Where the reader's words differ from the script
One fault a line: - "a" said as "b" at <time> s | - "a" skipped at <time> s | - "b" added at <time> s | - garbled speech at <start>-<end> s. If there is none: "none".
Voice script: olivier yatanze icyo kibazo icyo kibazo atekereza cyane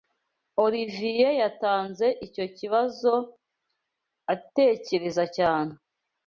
- "icyo kibazo" skipped at 3.1 s